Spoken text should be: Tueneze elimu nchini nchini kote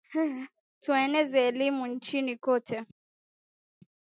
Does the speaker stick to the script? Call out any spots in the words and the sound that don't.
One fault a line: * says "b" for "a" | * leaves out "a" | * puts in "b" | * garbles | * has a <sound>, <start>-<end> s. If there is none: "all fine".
* leaves out "nchini"